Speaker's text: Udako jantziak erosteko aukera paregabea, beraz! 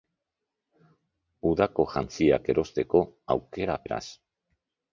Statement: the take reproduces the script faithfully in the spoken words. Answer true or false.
false